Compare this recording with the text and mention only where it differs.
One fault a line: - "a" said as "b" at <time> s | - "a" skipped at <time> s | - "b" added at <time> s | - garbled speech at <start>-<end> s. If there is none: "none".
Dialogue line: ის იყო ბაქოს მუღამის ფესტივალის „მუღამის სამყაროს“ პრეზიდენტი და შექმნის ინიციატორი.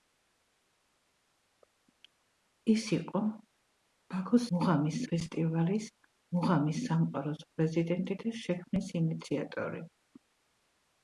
none